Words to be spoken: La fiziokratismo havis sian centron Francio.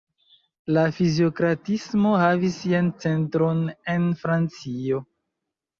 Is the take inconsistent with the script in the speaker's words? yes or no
yes